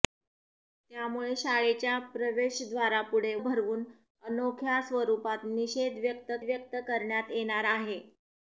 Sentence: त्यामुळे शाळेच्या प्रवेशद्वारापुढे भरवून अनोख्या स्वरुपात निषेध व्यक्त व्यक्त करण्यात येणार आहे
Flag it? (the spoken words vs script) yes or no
no